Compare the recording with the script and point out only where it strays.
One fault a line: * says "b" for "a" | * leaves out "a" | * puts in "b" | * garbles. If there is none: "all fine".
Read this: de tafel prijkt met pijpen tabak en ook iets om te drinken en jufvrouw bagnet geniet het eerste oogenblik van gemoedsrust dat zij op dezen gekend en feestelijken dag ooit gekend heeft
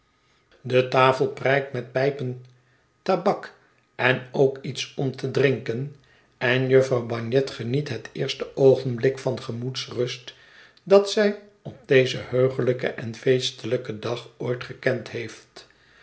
* says "heuglijken" for "gekend"